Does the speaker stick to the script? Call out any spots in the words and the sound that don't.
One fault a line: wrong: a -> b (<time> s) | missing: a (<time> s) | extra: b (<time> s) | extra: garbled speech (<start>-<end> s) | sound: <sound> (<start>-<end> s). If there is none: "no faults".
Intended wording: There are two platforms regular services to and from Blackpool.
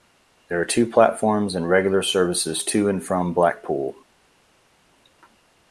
extra: and (1.5 s)